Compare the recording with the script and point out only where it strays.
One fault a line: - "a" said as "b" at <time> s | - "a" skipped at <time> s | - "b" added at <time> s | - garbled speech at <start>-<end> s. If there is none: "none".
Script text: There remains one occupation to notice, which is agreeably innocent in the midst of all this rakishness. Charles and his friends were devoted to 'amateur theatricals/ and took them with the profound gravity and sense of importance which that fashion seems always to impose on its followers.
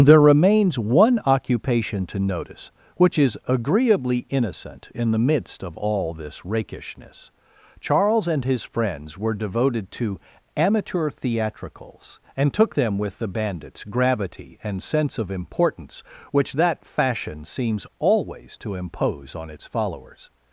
- "profound" said as "bandits" at 13.3 s